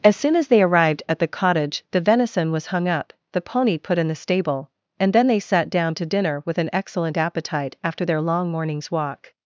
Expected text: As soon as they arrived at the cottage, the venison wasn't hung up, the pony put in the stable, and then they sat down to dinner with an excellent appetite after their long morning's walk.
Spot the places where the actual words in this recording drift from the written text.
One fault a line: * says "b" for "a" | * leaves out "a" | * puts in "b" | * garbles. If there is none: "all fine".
* says "was" for "wasn't"